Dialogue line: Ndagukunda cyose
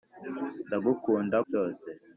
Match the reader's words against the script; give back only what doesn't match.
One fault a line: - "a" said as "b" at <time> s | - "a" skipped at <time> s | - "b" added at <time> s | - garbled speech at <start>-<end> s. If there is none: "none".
none